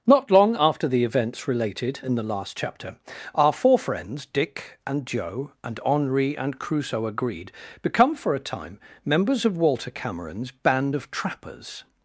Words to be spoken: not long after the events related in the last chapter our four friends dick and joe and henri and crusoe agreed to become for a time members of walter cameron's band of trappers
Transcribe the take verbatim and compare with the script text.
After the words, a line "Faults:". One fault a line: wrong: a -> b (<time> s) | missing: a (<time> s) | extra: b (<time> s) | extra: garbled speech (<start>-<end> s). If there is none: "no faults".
not long after the events related in the last chapter our four friends dick and joe and henri and crusoe agreed become for a time members of walter cameron's band of trappers
Faults:
missing: to (7.5 s)